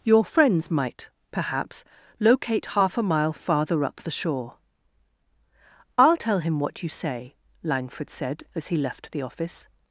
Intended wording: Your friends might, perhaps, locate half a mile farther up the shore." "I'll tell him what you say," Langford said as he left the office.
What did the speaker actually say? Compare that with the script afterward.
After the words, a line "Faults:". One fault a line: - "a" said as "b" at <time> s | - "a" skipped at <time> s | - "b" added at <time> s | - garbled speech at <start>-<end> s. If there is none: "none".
Your friends might, perhaps, locate half a mile farther up the shore." "I'll tell him what you say," Langford said as he left the office.
Faults:
none